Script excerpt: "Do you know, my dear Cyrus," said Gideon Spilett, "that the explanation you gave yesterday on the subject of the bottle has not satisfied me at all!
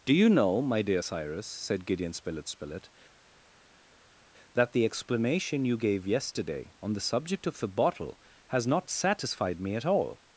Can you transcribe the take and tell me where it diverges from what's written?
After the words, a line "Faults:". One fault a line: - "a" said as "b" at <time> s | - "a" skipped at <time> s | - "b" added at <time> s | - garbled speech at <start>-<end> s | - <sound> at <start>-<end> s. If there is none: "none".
"Do you know, my dear Cyrus," said Gideon Spilett Spilett, "that the explanation you gave yesterday on the subject of the bottle has not satisfied me at all!
Faults:
- "Spilett" added at 2.5 s